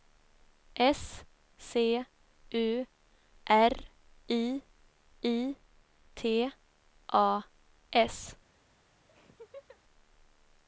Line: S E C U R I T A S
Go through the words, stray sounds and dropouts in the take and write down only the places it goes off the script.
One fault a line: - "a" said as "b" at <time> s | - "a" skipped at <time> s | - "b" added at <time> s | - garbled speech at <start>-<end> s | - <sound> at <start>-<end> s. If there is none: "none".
- "E" skipped at 1.2 s
- "I" added at 5.2 s
- laugh at 9.1-9.8 s